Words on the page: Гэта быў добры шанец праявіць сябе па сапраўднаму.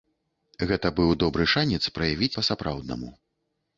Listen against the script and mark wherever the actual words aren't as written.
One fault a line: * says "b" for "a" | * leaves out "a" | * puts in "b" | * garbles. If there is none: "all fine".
* leaves out "сябе"